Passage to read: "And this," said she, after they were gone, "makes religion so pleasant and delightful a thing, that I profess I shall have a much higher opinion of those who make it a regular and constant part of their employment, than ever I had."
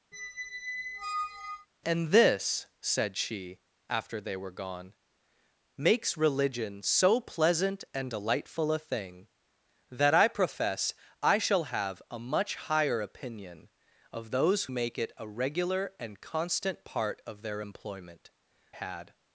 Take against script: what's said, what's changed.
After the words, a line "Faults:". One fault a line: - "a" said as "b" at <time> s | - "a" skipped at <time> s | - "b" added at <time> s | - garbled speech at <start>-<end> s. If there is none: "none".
"And this," said she, after they were gone, "makes religion so pleasant and delightful a thing, that I profess I shall have a much higher opinion of those make it a regular and constant part of their employment, had."
Faults:
- "who" skipped at 14.7 s
- "than ever I" skipped at 18.3 s